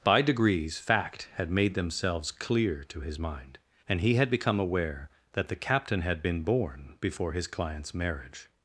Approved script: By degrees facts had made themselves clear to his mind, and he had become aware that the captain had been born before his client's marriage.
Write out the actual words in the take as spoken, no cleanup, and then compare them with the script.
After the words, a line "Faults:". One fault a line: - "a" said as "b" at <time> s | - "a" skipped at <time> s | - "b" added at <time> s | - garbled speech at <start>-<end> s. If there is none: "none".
By degrees fact had made themselves clear to his mind, and he had become aware that the captain had been born before his client's marriage.
Faults:
- "facts" said as "fact" at 0.8 s